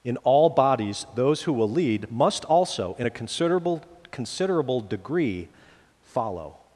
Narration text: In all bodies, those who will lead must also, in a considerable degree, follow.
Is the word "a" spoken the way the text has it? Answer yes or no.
yes